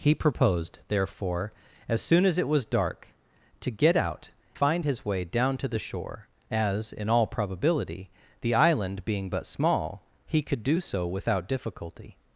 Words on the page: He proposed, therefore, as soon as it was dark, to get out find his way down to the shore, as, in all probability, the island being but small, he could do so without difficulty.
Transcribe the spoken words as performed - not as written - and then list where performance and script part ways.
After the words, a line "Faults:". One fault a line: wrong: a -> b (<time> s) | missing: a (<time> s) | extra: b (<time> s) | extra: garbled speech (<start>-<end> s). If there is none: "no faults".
He proposed, therefore, as soon as it was dark, to get out find his way down to the shore, as, in all probability, the island being but small, he could do so without difficulty.
Faults:
no faults